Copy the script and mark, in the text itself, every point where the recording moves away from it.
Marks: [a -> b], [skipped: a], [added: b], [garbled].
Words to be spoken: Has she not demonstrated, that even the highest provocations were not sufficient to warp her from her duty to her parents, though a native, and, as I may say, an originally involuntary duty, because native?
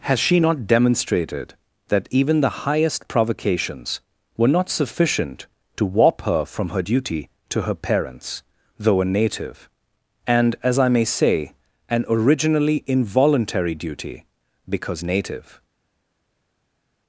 Has she not demonstrated, that even the highest provocations were not sufficient to warp her from her duty to her parents, though a native, and, as I may say, an originally involuntary duty, because native?